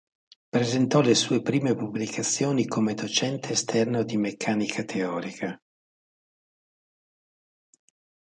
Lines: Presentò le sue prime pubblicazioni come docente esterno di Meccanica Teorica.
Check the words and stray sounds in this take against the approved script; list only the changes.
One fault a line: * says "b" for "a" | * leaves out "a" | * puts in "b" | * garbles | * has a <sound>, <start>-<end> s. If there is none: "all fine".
all fine